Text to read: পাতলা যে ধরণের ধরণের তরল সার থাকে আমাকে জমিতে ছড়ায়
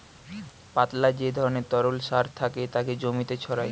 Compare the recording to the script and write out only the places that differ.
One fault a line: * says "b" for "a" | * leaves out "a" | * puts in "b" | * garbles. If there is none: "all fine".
* leaves out "ধরণের"
* says "তাকে" for "আমাকে"